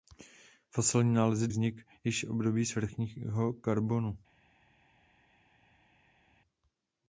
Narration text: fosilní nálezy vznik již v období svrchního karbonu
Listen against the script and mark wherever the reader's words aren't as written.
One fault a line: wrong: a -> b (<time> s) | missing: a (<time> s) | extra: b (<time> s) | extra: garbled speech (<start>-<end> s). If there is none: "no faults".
no faults